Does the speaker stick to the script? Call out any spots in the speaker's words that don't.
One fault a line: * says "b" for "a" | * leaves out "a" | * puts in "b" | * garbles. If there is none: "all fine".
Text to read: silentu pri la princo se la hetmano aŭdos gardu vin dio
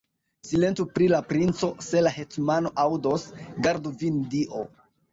all fine